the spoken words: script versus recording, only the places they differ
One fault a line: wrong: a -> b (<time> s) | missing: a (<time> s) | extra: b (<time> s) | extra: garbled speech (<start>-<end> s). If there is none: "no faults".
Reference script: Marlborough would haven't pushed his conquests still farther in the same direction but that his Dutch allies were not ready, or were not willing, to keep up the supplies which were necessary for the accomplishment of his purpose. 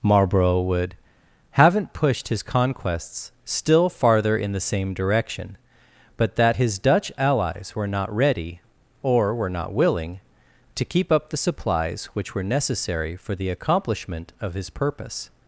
no faults